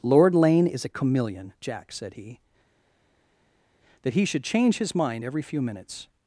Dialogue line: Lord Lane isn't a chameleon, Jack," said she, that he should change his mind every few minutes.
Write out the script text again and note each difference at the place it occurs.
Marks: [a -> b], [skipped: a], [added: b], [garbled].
Lord Lane [isn't -> is] a chameleon, Jack," said [she, -> he] that he should change his mind every few minutes.